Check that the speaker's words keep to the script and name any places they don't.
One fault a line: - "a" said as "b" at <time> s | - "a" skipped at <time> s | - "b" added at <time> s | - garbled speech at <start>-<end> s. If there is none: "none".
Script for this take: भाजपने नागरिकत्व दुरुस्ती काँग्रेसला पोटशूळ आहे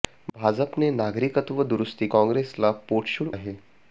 none